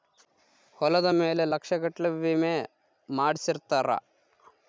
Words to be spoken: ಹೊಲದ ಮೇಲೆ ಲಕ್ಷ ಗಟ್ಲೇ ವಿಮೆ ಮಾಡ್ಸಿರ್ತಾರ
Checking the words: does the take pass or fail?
pass